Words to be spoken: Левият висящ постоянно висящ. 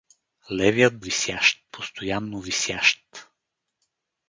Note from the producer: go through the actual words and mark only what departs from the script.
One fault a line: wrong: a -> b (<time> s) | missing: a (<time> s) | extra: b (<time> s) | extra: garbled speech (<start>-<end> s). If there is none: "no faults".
no faults